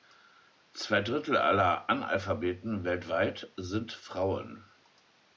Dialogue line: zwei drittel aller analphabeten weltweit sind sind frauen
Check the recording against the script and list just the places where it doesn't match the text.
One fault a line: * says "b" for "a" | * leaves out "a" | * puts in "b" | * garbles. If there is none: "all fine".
* leaves out "sind"